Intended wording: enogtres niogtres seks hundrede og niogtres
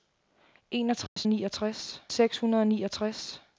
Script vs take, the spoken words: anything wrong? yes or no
no